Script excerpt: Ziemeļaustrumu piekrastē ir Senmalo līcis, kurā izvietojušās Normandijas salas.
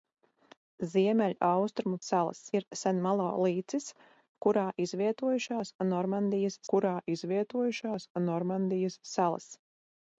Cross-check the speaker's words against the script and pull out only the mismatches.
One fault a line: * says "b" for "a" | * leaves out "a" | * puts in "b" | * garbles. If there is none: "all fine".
* says "salas" for "piekrastē"
* puts in "kurā izvietojušās Normandijas"